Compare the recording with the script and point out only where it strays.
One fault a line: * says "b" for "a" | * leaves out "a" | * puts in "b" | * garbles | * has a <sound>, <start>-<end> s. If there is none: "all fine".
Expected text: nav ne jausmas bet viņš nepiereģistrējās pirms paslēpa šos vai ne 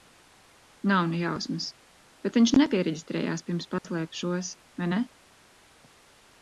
* has a dropout, 3.8-3.8 s